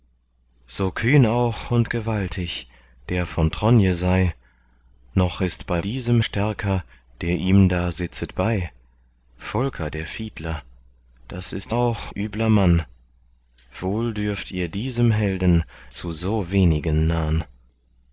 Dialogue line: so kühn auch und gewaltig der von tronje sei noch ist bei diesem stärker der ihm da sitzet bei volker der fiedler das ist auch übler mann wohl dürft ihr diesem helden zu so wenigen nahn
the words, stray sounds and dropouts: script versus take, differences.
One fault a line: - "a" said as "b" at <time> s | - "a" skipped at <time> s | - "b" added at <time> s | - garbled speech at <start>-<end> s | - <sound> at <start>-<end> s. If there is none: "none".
none